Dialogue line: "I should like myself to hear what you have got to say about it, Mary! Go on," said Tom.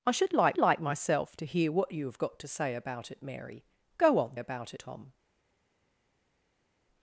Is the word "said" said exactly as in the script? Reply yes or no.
no